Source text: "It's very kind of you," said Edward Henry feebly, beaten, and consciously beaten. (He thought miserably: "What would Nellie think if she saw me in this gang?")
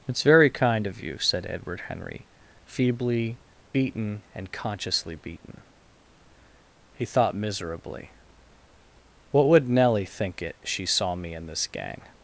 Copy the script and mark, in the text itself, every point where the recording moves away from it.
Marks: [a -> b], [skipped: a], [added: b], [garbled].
"It's very kind of you," said Edward Henry feebly, beaten, and consciously beaten. (He thought miserably: "What would Nellie think [if -> it] she saw me in this gang?")